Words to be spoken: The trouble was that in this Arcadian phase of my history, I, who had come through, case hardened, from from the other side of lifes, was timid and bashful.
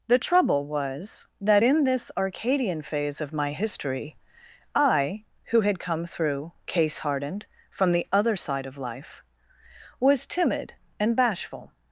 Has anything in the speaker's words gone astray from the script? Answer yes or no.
yes